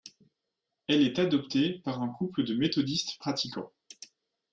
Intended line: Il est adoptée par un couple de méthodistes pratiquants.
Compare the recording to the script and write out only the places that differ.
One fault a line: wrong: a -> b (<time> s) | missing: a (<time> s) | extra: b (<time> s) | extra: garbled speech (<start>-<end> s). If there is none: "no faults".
wrong: Il -> Elle (0.9 s)